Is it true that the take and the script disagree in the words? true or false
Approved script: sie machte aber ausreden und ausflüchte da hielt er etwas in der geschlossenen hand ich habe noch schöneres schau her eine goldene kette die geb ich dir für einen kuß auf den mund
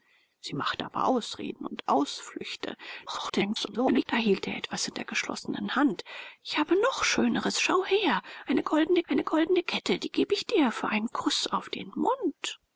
true